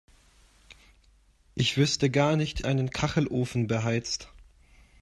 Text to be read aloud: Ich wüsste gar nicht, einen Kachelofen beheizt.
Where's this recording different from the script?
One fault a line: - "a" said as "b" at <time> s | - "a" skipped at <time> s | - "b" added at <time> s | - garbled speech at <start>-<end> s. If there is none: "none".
none